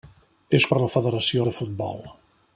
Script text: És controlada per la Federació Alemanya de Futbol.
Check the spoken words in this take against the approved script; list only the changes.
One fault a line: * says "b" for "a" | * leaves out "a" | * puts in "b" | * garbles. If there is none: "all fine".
* leaves out "controlada"
* leaves out "Alemanya"